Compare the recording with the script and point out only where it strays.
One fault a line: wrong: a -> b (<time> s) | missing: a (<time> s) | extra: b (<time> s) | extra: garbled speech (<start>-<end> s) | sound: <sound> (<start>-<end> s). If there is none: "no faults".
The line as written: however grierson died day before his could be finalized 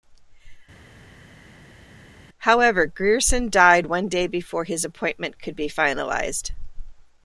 extra: one (3.9 s)
extra: appointment (4.8 s)